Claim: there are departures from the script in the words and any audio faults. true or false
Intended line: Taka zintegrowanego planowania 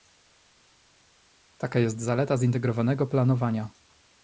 true